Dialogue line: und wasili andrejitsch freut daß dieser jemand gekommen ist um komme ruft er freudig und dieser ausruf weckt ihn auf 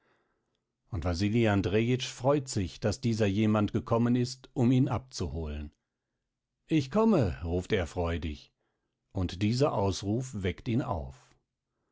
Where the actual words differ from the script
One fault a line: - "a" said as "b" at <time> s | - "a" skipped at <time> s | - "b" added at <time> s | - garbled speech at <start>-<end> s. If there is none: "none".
- "sich" added at 2.5 s
- "ihn abzuholen ich" added at 4.7 s